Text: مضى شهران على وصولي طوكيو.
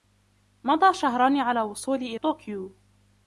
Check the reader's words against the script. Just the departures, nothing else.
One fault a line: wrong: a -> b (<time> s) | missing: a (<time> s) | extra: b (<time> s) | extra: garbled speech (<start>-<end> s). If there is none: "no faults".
no faults